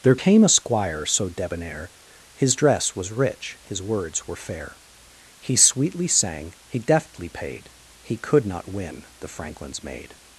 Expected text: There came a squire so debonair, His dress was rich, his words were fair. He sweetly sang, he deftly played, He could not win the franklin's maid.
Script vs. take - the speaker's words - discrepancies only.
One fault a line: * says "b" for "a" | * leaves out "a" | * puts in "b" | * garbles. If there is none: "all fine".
* says "paid" for "played"